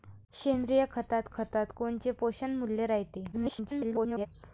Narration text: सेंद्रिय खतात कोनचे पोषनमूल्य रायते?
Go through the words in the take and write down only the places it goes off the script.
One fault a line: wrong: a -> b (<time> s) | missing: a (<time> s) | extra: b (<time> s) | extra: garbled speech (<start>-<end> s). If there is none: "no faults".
extra: खतात (1.3 s)
extra: garbled speech (3.3-4.3 s)